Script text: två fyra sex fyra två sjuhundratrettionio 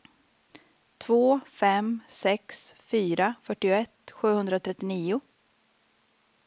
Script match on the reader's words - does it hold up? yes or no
no